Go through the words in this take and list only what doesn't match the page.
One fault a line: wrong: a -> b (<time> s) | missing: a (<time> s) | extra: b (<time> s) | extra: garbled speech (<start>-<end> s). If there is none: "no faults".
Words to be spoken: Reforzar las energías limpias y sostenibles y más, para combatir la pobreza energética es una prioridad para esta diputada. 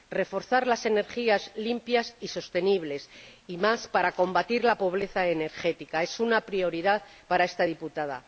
no faults